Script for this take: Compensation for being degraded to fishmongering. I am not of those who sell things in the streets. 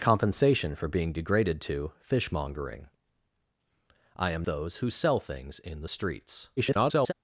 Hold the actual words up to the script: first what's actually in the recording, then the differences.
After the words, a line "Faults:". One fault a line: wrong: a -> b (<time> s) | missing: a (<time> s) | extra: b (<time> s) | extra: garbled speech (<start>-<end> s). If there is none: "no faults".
Compensation for being degraded to fishmongering. I am those who sell things in the streets. [garbled]
Faults:
missing: not of (4.5 s)
extra: garbled speech (6.6-7.1 s)